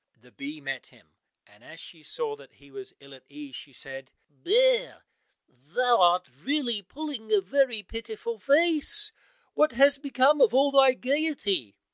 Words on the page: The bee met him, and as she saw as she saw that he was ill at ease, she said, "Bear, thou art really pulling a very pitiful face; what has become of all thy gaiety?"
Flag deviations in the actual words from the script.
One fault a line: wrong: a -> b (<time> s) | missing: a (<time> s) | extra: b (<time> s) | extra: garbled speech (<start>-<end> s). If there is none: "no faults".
missing: as she saw (2.4 s)